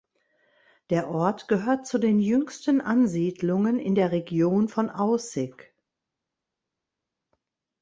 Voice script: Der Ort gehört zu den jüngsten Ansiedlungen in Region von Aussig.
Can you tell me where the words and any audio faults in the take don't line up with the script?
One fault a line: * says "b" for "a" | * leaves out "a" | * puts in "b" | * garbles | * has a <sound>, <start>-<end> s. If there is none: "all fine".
* puts in "der"